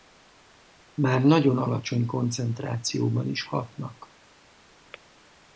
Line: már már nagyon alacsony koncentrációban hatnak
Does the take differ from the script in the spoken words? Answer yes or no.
yes